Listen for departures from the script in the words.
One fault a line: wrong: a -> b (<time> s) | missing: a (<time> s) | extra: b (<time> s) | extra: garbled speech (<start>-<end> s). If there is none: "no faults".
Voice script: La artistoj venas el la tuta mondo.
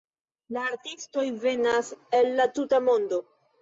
no faults